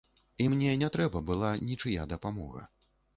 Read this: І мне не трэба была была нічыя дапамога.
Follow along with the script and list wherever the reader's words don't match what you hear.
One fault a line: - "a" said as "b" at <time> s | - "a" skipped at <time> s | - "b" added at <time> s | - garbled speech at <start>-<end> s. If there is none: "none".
- "была" skipped at 1.5 s